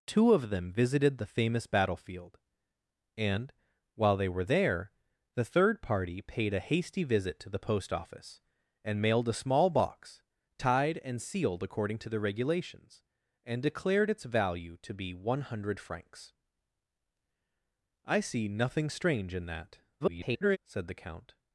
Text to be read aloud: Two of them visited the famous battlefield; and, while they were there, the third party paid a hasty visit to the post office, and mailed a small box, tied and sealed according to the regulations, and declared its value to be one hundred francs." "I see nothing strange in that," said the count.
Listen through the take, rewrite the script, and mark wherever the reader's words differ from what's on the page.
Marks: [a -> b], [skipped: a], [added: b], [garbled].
Two of them visited the famous battlefield; and, while they were there, the third party paid a hasty visit to the post office, and mailed a small box, tied and sealed according to the regulations, and declared its value to be one hundred francs." "I see nothing strange in that," [garbled] said the count.